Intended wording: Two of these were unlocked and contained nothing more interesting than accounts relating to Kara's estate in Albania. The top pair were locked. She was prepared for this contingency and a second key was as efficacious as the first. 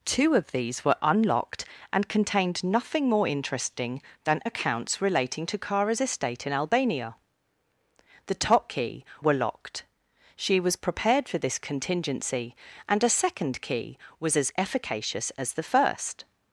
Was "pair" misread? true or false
true